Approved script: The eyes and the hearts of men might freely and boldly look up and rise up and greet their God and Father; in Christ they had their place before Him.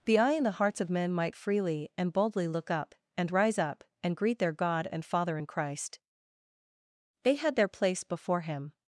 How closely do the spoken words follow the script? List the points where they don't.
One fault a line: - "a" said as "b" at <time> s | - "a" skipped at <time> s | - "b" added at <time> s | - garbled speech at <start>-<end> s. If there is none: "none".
- "eyes" said as "eye" at 0.2 s